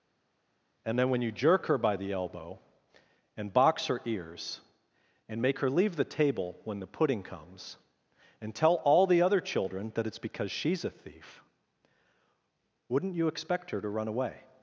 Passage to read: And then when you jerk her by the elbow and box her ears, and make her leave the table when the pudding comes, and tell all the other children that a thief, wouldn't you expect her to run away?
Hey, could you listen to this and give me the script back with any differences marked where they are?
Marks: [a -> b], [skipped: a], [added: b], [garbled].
And then when you jerk her by the elbow and box her ears, and make her leave the table when the pudding comes, and tell all the other children that [added: it's because she's] a thief, wouldn't you expect her to run away?